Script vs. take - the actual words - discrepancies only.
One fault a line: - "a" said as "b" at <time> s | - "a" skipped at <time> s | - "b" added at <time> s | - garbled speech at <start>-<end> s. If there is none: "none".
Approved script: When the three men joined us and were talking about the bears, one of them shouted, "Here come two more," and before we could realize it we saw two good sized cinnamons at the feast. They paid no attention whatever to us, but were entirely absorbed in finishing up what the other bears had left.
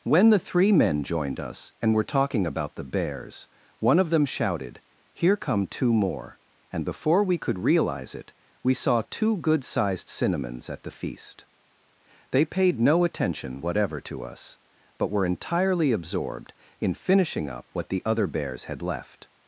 none